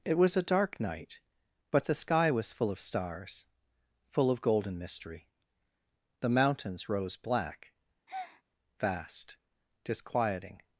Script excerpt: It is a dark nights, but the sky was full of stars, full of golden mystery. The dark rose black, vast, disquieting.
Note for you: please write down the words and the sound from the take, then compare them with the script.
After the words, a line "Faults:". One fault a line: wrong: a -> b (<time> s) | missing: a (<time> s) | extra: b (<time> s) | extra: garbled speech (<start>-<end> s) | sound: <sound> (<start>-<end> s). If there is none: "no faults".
It was a dark night, but the sky was full of stars, full of golden mystery. The mountains rose black, vast, disquieting.
Faults:
wrong: is -> was (0.2 s)
wrong: nights -> night (0.8 s)
wrong: dark -> mountains (6.3 s)
sound: breath (8.1-8.4 s)